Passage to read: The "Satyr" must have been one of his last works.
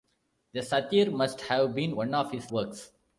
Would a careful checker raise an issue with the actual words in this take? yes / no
yes